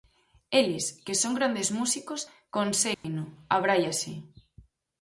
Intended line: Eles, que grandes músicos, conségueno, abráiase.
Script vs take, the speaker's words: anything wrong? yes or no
yes